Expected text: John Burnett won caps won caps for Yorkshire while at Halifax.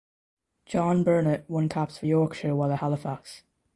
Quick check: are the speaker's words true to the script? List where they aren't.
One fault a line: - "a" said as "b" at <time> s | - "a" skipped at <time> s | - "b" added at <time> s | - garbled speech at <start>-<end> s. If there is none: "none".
- "won caps" skipped at 2.0 s